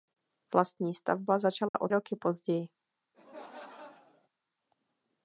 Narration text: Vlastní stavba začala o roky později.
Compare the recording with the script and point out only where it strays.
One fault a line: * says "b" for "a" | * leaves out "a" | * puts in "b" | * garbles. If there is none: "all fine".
all fine